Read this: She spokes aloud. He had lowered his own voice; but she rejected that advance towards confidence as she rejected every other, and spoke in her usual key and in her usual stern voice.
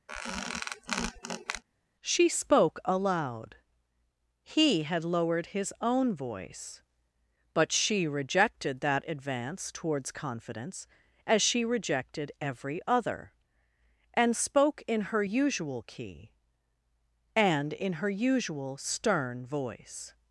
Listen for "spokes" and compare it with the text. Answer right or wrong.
wrong